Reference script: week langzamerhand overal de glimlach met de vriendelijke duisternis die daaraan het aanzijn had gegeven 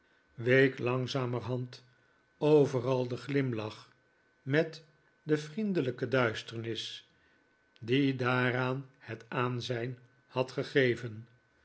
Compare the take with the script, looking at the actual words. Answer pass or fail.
pass